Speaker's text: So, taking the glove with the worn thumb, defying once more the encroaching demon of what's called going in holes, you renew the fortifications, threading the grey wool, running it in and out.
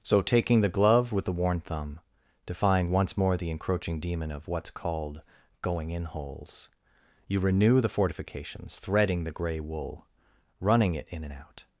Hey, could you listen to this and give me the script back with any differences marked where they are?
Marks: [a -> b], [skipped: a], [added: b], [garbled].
So, taking the glove with the worn thumb, defying once more the encroaching demon of what's called going in holes, you renew the fortifications, threading the grey wool, running it in and out.